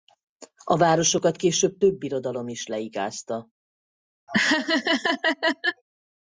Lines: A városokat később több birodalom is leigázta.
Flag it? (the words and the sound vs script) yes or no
yes